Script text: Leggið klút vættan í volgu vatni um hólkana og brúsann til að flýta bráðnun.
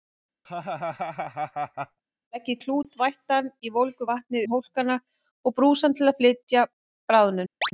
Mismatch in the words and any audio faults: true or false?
true